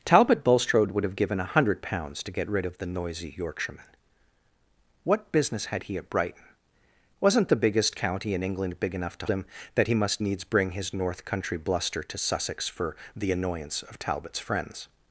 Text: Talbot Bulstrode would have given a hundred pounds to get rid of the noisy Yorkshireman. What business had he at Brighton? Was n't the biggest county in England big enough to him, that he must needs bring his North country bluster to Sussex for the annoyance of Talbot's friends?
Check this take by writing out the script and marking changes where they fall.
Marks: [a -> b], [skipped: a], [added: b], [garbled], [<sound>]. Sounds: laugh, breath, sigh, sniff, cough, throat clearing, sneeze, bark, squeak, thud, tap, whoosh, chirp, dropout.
Talbot Bulstrode would have given a hundred pounds to get rid of the noisy Yorkshireman. What business had he at Brighton? Was n't the biggest county in England big enough to him, that he must needs bring his North country bluster to Sussex for the annoyance of Talbot's friends?